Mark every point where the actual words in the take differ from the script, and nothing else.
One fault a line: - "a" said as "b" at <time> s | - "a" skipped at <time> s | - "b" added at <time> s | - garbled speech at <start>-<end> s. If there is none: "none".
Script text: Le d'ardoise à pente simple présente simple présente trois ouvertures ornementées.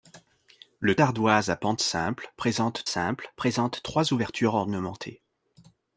none